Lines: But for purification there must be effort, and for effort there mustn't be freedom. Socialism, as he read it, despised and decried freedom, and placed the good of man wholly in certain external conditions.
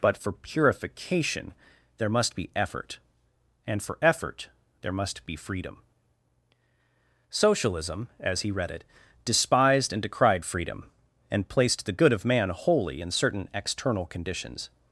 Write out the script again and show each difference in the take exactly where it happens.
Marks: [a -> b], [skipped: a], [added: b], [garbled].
But for purification there must be effort, and for effort there [mustn't -> must] be freedom. Socialism, as he read it, despised and decried freedom, and placed the good of man wholly in certain external conditions.